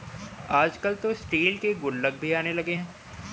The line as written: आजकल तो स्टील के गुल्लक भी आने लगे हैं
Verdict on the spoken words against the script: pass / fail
pass